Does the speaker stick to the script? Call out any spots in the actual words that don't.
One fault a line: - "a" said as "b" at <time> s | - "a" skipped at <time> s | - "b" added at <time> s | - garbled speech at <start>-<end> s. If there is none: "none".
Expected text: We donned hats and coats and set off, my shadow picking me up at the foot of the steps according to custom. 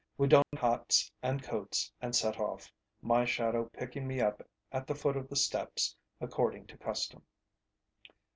none